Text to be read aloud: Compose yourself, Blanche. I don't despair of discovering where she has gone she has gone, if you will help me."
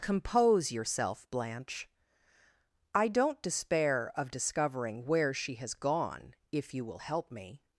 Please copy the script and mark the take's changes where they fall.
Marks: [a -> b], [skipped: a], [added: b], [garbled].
Compose yourself, Blanche. I don't despair of discovering where she has gone [skipped: she has gone,] if you will help me."